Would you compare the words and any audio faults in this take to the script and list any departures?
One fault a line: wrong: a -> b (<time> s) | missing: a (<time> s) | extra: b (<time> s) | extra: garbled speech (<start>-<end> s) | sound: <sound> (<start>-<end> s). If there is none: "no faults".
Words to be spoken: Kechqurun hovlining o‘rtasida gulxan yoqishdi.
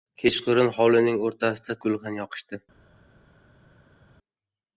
no faults